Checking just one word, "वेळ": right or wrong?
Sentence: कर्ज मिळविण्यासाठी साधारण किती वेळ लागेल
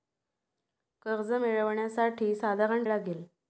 wrong